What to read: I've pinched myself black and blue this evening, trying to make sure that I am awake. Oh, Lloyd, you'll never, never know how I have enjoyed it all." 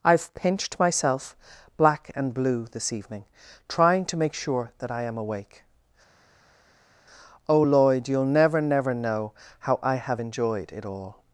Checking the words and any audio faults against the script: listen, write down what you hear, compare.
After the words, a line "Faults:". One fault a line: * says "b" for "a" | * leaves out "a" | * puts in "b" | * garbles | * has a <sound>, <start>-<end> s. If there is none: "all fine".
I've pinched myself black and blue this evening, trying to make sure that I am awake. Oh, Lloyd, you'll never, never know how I have enjoyed it all."
Faults:
all fine